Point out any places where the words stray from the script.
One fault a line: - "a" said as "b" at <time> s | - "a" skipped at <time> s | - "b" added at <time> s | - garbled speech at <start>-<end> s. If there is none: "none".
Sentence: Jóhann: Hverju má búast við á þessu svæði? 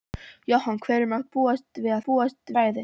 - "þessu" said as "búast" at 2.1 s